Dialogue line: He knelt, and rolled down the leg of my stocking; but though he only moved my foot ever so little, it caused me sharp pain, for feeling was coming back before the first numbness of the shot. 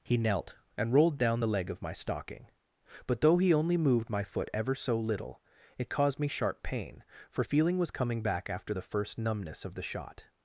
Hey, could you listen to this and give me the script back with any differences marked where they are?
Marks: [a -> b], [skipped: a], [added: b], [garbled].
He knelt, and rolled down the leg of my stocking; but though he only moved my foot ever so little, it caused me sharp pain, for feeling was coming back [before -> after] the first numbness of the shot.